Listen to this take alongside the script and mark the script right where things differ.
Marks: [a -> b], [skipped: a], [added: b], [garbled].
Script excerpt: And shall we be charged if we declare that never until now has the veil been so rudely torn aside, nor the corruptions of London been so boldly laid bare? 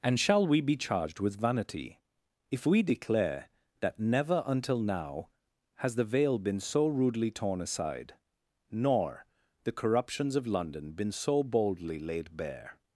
And shall we be charged [added: with vanity] if we declare that never until now has the veil been so rudely torn aside, nor the corruptions of London been so boldly laid bare?